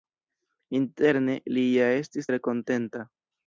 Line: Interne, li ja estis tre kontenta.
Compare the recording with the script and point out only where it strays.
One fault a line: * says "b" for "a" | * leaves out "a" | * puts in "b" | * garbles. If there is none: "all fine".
all fine